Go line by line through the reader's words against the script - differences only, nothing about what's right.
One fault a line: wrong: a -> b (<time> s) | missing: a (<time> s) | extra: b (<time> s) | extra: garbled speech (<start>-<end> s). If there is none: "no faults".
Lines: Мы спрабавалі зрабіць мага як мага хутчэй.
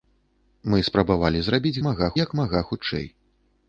no faults